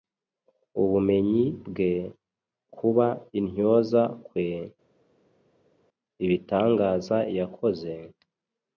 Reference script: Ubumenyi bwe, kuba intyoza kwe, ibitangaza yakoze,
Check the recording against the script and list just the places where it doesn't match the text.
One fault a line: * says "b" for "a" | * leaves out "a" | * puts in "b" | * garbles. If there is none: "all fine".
all fine